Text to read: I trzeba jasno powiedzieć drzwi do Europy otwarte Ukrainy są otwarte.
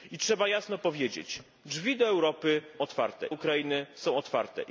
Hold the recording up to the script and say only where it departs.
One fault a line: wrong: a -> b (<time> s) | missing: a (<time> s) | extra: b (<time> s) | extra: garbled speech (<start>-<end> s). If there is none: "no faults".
no faults